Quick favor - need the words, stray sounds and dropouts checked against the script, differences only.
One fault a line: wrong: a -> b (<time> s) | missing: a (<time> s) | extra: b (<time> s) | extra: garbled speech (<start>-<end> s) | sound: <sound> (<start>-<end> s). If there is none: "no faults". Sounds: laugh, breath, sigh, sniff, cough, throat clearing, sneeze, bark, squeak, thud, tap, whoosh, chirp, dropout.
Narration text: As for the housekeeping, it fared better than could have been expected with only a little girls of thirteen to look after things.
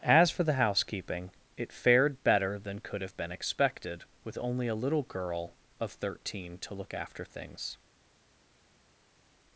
wrong: girls -> girl (5.0 s)